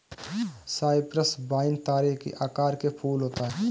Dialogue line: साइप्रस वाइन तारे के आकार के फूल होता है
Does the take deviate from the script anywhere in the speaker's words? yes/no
no